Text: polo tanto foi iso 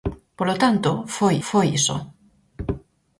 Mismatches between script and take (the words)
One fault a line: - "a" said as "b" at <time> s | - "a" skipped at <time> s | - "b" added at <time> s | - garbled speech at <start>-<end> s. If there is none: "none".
- "foi" added at 1.5 s